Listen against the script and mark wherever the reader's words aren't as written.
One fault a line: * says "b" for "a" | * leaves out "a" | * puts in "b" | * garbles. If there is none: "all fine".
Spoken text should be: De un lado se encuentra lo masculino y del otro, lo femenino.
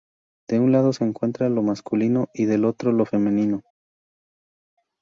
all fine